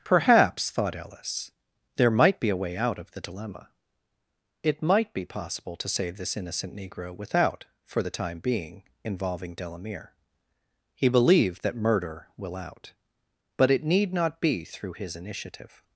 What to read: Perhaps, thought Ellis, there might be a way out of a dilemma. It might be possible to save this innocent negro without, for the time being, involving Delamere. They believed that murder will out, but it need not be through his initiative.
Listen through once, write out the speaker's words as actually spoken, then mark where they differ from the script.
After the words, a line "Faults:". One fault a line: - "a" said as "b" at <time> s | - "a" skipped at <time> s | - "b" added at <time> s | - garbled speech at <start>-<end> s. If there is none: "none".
Perhaps, thought Ellis, there might be a way out of the dilemma. It might be possible to save this innocent negro without, for the time being, involving Delamere. He believed that murder will out, but it need not be through his initiative.
Faults:
- "a" said as "the" at 3.1 s
- "They" said as "He" at 10.9 s